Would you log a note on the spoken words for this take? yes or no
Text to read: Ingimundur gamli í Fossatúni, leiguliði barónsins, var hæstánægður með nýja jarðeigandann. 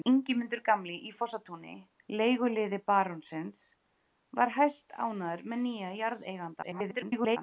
yes